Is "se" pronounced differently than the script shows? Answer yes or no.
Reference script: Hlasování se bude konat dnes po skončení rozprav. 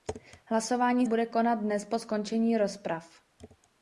yes